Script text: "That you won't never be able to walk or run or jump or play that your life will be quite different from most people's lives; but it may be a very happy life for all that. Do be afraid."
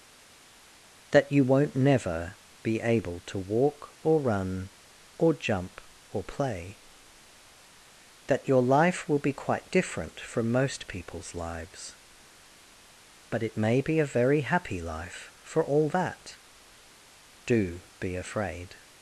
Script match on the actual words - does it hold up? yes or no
yes